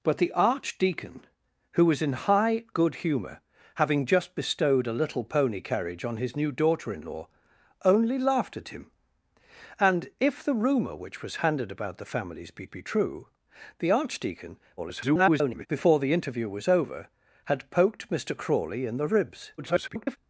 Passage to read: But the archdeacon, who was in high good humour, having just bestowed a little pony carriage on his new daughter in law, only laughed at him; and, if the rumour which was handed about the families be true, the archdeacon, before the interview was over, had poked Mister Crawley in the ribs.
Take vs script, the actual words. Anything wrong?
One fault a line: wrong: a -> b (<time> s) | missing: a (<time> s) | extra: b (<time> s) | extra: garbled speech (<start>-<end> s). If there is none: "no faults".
extra: be (12.6 s)
extra: garbled speech (14.8-15.7 s)
extra: garbled speech (19.6-20.2 s)